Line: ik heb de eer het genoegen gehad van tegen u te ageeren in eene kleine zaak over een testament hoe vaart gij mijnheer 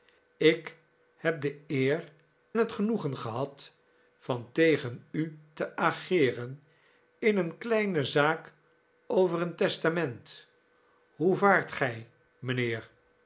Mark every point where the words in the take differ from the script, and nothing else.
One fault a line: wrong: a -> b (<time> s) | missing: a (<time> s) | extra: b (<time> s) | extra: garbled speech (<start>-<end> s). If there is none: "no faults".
no faults